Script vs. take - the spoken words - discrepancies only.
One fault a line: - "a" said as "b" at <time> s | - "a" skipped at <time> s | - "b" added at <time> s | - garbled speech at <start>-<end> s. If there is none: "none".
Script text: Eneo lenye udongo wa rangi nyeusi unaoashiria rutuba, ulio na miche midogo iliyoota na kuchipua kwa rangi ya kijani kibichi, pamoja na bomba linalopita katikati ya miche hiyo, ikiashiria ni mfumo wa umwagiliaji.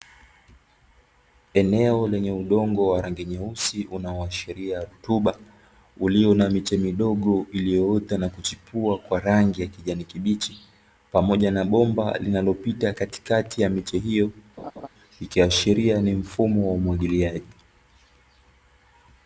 none